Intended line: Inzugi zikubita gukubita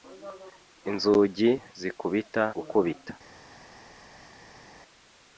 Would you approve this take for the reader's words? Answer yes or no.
yes